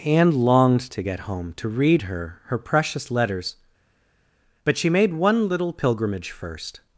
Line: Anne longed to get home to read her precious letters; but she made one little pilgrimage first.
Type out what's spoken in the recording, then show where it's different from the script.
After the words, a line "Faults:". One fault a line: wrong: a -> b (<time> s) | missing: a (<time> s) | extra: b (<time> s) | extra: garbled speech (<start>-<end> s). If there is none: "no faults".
Anne longed to get home to read her her precious letters; but she made one little pilgrimage first.
Faults:
extra: her (2.5 s)